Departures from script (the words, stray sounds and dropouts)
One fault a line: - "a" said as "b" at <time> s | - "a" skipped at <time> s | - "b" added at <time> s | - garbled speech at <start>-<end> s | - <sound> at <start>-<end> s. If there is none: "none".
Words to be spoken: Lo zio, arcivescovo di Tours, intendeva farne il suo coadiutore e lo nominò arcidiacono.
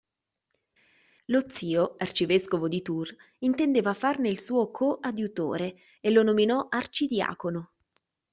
none